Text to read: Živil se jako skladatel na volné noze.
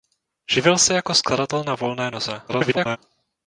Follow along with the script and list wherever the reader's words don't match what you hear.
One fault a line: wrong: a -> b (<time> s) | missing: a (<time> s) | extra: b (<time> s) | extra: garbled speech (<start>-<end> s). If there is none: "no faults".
extra: garbled speech (2.5-3.0 s)